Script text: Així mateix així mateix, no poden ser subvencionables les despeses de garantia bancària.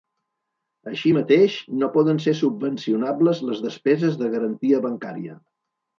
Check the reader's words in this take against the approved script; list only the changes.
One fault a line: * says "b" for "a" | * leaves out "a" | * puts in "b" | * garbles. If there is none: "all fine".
* leaves out "així mateix"